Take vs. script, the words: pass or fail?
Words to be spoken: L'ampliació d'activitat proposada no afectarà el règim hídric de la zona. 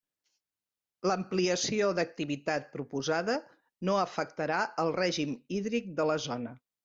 pass